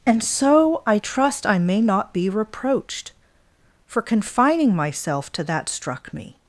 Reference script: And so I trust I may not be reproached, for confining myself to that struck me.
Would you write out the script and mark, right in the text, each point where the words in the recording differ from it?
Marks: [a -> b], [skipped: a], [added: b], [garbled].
And so I trust I may not be reproached, for confining myself to that struck me.